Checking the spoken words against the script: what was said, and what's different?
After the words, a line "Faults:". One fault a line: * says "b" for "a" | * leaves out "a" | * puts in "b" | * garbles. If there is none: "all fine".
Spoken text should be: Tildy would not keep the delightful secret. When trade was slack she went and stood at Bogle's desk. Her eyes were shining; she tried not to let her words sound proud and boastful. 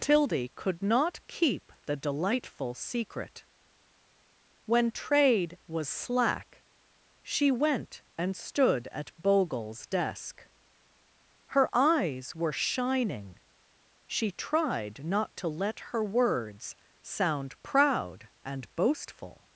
Tildy could not keep the delightful secret. When trade was slack she went and stood at Bogle's desk. Her eyes were shining; she tried not to let her words sound proud and boastful.
Faults:
* says "could" for "would"